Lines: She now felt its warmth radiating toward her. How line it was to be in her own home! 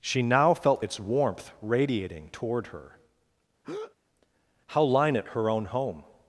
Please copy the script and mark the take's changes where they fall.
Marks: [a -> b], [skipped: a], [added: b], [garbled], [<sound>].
She now felt its warmth radiating toward her. [breath] How line it [skipped: was to be in] her own home!